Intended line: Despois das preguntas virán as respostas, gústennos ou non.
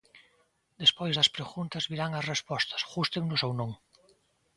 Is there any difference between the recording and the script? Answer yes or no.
no